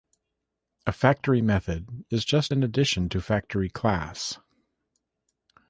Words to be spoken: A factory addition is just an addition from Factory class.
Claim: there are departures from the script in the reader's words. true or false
true